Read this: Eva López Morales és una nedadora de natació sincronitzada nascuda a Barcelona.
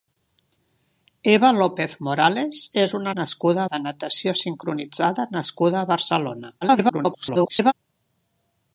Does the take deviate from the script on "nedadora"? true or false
true